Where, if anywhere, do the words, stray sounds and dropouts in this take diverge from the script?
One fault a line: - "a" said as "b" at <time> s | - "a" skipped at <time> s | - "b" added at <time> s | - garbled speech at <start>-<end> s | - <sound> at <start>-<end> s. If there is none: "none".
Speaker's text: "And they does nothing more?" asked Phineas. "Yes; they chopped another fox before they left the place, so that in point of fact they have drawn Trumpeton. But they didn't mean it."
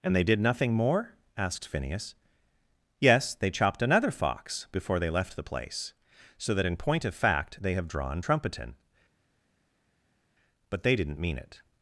- "does" said as "did" at 0.2 s